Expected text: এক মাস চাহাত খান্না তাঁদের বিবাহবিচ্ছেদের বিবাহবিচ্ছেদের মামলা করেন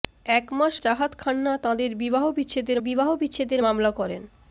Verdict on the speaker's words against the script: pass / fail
pass